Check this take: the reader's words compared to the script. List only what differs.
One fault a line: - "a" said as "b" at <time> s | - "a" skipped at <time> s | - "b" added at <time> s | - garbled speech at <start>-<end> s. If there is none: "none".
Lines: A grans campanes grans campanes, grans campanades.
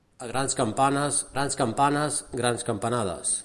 none